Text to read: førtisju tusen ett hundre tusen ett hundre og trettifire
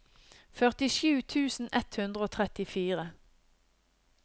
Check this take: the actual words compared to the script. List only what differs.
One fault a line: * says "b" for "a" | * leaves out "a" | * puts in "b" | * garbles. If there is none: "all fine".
* leaves out "tusen ett hundre"